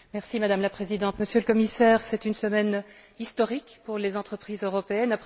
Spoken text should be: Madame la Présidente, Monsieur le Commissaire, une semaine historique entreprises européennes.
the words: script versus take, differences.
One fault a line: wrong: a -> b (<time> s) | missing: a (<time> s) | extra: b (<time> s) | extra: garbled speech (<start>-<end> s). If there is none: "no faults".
extra: c'est (2.0 s)
extra: pour les (3.9 s)